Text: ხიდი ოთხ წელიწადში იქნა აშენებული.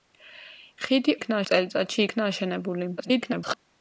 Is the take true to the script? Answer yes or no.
no